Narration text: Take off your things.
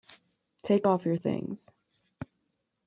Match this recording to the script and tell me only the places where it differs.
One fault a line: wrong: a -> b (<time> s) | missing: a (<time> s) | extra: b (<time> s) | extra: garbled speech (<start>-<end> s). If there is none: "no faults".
no faults